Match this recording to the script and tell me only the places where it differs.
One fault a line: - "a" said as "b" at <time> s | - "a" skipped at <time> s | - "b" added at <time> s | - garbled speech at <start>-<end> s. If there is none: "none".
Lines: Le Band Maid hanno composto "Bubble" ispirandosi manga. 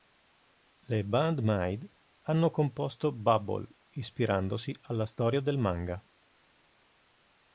- "alla storia del" added at 4.8 s